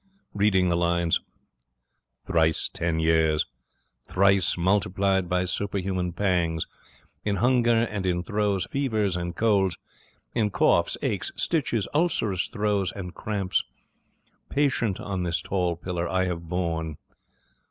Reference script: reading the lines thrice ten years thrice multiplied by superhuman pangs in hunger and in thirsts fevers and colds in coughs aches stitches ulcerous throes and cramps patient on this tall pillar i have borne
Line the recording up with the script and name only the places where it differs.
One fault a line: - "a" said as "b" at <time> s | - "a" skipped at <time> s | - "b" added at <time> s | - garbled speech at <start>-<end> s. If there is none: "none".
- "thirsts" said as "throes" at 8.2 s